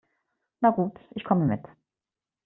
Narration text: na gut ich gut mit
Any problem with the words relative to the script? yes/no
yes